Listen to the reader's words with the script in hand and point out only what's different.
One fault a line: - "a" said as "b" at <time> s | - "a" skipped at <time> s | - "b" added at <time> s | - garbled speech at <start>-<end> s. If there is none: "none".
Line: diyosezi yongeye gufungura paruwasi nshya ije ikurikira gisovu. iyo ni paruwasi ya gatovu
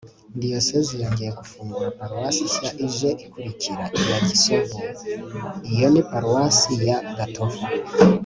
- "iya" added at 4.0 s